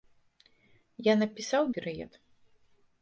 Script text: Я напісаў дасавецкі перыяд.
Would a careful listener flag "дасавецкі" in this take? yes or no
yes